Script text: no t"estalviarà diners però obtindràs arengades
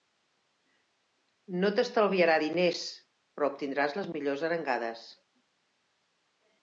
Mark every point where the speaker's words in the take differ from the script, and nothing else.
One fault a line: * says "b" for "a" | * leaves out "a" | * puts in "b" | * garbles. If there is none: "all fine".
* puts in "les millors"